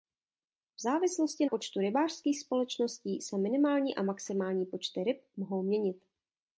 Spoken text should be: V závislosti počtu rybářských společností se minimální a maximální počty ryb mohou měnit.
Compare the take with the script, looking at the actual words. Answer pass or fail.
pass